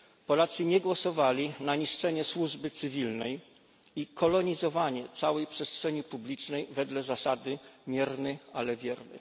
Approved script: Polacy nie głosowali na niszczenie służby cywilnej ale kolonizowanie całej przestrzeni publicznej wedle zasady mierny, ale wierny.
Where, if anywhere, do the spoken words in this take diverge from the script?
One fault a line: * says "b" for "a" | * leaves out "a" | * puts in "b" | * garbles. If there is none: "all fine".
* says "i" for "ale"